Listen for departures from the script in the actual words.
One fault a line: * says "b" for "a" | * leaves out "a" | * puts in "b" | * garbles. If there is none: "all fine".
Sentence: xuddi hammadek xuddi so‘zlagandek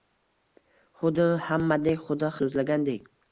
all fine